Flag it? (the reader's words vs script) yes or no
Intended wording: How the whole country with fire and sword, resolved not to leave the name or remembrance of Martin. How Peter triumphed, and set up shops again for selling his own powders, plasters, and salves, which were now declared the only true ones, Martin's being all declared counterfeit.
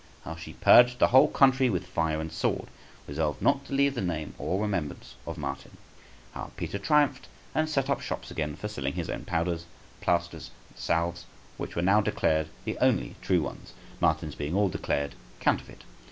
yes